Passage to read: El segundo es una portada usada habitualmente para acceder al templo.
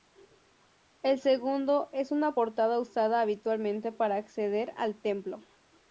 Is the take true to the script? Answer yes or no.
yes